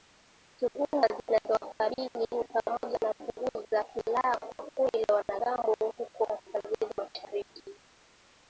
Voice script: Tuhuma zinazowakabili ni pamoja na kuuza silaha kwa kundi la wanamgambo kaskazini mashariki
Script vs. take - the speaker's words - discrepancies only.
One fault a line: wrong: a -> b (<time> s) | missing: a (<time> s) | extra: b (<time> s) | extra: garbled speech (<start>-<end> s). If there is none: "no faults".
extra: huko (6.0 s)